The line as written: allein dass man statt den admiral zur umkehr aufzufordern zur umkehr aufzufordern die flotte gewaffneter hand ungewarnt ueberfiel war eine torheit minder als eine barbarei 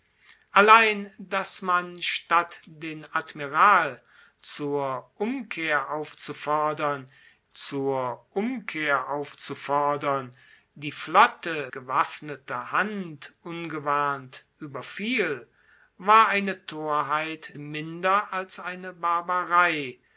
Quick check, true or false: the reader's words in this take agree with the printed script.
true